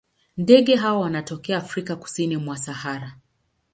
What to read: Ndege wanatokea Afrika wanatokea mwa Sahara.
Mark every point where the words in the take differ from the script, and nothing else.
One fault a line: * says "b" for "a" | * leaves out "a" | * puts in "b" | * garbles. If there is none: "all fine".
* puts in "hawa"
* says "kusini" for "wanatokea"